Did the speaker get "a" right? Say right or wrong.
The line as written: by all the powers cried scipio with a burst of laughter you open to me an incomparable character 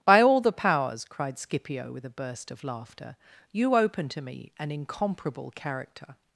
right